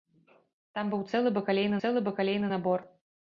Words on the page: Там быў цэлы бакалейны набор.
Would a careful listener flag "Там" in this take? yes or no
no